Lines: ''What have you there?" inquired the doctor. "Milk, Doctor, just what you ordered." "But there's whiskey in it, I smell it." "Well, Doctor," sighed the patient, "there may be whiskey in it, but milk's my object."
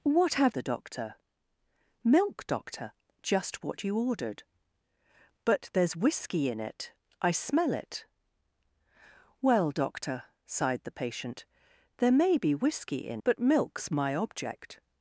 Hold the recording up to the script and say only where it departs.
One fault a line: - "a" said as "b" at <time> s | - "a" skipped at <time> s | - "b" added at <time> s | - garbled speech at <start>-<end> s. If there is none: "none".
- "you there inquired" skipped at 0.6 s
- "it" skipped at 13.2 s